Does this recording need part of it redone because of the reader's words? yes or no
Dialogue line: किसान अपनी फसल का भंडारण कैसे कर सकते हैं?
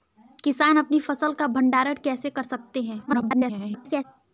yes